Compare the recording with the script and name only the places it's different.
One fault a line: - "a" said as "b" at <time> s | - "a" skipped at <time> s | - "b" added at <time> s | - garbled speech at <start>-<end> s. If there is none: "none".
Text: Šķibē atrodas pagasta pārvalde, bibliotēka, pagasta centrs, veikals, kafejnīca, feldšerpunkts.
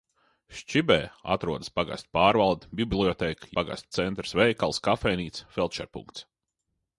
none